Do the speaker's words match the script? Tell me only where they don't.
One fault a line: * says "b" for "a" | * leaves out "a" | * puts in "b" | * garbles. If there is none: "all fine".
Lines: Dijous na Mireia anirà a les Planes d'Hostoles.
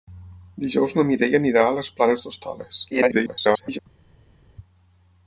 * garbles